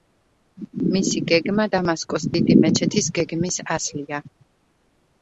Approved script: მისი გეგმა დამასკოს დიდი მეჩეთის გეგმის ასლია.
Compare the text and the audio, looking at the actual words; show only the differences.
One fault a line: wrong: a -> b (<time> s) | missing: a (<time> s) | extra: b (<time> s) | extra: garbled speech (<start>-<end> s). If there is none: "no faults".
no faults